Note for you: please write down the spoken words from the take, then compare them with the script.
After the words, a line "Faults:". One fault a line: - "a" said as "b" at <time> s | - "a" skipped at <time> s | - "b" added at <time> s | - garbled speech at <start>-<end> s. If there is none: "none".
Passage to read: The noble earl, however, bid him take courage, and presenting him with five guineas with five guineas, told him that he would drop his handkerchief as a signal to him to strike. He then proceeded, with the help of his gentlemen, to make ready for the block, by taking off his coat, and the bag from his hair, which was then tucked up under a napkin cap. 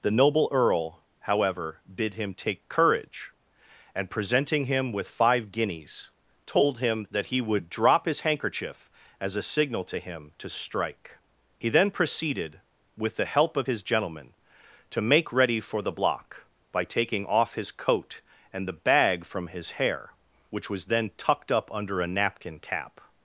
The noble earl, however, bid him take courage, and presenting him with five guineas, told him that he would drop his handkerchief as a signal to him to strike. He then proceeded, with the help of his gentlemen, to make ready for the block, by taking off his coat, and the bag from his hair, which was then tucked up under a napkin cap.
Faults:
- "with five guineas" skipped at 6.1 s